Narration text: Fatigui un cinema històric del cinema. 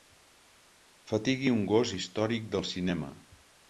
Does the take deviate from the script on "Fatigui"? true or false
false